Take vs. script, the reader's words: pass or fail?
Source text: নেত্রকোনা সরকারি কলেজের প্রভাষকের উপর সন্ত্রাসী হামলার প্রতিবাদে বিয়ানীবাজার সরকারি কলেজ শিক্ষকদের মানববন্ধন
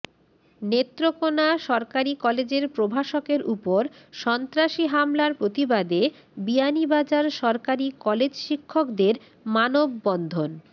pass